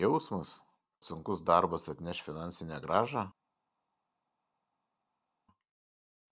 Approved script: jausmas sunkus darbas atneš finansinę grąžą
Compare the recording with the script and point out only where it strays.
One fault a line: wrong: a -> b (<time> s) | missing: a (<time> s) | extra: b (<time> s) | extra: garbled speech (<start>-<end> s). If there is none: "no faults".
no faults